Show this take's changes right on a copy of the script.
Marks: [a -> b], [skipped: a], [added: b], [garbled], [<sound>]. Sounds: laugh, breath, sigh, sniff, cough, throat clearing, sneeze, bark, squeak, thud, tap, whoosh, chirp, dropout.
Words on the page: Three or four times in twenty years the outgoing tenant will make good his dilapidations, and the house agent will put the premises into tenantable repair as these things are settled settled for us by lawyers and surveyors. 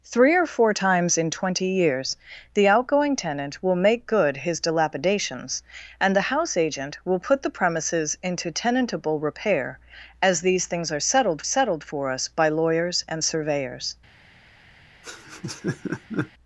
Three or four times in twenty years the outgoing tenant will make good his dilapidations, and the house agent will put the premises into tenantable repair as these things are settled settled for us by lawyers and surveyors. [laugh]